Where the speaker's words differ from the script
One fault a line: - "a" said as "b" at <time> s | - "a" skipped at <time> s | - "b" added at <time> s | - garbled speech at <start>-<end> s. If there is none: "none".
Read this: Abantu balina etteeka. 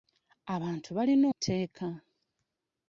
none